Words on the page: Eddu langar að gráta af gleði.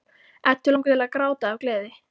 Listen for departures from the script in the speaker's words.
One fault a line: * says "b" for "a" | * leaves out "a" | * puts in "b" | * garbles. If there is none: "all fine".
* puts in "til"